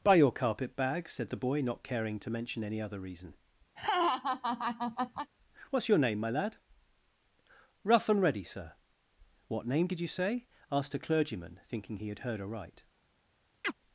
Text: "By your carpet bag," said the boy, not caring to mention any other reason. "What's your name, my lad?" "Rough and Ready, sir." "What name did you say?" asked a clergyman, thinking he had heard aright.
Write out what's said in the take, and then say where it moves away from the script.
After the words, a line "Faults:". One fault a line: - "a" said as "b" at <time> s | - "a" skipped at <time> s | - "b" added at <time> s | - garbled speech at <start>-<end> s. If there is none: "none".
"By your carpet bag," said the boy, not caring to mention any other reason. "What's your name, my lad?" "Rough and Ready, sir." "What name did you say?" asked a clergyman, thinking he had heard aright.
Faults:
none